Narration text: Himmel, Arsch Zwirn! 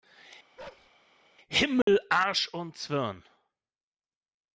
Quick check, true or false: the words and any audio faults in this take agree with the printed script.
false